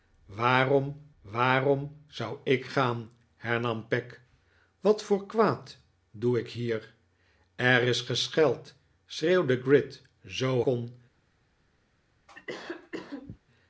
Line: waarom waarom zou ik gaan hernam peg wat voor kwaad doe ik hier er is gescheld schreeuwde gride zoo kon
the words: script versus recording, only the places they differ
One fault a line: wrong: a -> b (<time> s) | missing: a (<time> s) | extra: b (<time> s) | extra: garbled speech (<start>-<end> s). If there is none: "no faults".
no faults